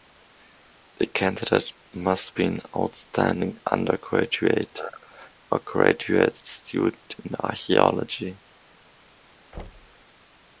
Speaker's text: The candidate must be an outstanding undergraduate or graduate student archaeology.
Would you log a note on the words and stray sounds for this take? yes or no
yes